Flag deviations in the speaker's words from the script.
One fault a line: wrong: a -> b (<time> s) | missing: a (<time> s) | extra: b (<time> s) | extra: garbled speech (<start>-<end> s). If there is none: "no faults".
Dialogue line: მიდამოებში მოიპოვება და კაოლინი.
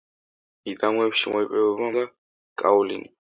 no faults